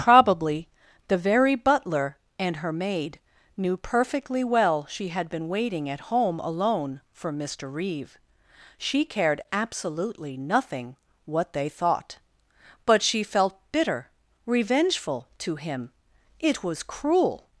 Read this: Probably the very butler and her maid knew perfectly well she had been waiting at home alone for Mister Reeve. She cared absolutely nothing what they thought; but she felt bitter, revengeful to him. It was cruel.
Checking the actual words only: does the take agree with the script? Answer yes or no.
yes